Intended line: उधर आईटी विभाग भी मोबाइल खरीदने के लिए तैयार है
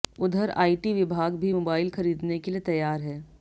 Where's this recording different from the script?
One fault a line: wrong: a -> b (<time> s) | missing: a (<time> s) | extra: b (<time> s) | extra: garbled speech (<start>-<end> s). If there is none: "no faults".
no faults